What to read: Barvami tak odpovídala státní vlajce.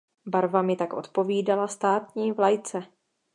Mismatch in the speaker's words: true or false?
false